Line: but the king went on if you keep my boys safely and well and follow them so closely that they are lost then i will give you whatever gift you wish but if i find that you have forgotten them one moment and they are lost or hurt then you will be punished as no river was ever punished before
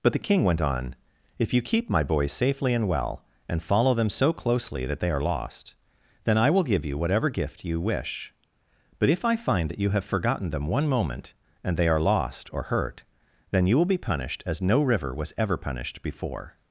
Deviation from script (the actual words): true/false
false